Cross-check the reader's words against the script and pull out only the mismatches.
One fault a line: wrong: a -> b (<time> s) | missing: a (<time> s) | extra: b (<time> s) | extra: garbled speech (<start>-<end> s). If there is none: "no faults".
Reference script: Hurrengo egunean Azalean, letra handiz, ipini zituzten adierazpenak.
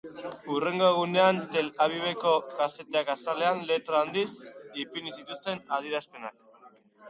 extra: Tel Aviveko kazetek (1.6 s)